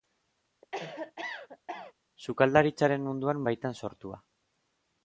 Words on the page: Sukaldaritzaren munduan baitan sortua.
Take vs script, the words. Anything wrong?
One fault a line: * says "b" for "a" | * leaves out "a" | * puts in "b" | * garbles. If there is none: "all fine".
all fine